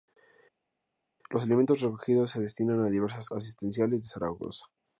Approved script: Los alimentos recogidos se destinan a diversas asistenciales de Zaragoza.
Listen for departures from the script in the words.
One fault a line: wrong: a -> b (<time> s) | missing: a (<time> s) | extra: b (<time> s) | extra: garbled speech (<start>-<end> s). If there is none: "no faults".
no faults